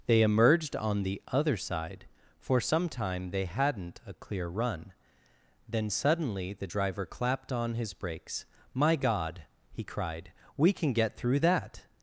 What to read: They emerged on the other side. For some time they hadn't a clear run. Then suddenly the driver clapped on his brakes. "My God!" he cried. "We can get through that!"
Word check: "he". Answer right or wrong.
right